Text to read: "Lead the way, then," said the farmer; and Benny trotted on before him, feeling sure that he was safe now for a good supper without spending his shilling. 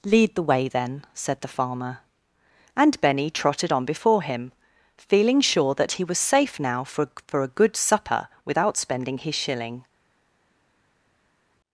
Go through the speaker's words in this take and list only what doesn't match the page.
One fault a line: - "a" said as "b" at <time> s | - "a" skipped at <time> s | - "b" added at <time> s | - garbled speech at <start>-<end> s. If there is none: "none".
- "for" added at 7.3 s